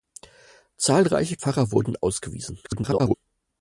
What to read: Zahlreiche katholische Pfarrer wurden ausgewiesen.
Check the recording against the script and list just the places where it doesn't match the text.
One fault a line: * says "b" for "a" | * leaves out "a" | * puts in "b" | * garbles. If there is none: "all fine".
* leaves out "katholische"
* garbles